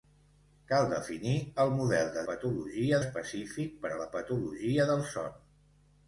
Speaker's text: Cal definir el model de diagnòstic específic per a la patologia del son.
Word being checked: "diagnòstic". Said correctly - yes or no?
no